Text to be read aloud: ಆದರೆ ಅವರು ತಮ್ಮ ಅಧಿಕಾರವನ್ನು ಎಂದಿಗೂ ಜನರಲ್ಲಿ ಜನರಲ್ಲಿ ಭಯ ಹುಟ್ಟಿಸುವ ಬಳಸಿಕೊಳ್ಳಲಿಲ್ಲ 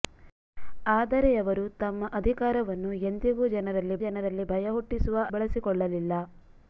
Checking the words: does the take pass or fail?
pass